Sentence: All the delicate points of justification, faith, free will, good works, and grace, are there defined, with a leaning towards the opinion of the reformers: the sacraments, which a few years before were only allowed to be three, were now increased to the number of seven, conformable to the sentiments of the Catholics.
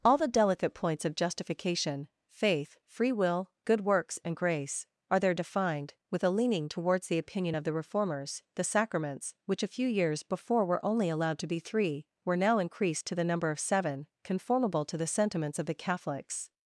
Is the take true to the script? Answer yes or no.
yes